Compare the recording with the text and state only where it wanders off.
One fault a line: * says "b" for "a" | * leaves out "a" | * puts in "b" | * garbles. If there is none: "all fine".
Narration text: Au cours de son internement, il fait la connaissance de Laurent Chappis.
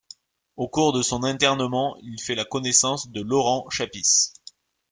all fine